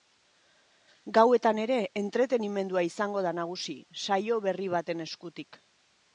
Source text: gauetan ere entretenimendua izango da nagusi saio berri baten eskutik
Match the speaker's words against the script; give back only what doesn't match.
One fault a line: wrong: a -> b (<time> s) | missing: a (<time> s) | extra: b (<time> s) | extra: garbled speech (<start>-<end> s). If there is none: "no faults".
no faults